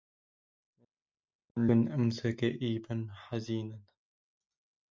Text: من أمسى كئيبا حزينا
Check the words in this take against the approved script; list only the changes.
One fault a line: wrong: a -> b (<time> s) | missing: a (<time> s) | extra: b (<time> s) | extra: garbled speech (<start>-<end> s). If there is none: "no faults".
no faults